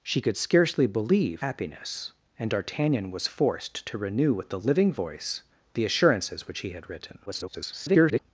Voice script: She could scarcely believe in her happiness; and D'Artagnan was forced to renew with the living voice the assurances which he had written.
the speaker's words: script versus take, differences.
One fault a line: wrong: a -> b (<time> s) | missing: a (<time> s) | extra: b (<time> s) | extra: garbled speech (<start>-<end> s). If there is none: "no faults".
missing: in her (1.4 s)
extra: garbled speech (7.3-8.2 s)